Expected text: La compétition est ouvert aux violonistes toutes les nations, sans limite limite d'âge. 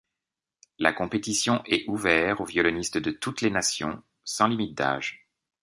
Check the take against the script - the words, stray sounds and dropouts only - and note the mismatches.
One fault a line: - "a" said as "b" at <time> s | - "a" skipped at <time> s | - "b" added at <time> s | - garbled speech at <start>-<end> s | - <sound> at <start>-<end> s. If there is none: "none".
- "de" added at 3.0 s
- "limite" skipped at 4.7 s